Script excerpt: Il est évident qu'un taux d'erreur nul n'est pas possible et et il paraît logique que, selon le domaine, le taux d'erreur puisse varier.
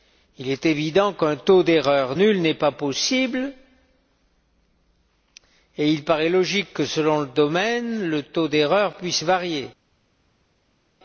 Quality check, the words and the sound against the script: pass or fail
fail